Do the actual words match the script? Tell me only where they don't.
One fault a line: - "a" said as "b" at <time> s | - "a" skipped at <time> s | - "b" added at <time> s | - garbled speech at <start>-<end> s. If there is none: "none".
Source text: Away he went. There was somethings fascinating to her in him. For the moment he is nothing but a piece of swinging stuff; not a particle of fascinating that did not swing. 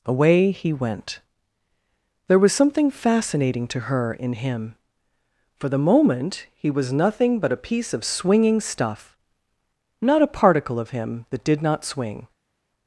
- "somethings" said as "something" at 2.5 s
- "is" said as "was" at 6.7 s
- "fascinating" said as "him" at 10.9 s